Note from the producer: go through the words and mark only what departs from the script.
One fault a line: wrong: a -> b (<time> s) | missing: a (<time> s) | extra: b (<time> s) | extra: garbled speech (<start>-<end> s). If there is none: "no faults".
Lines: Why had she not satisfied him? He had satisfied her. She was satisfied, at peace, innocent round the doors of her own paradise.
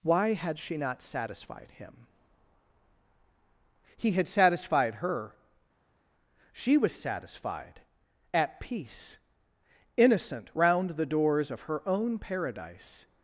no faults